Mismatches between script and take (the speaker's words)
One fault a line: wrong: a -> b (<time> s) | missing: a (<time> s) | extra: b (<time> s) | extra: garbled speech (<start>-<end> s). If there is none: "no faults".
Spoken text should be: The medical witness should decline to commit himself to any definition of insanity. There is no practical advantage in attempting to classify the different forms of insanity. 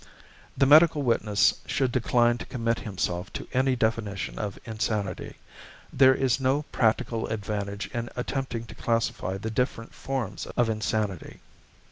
no faults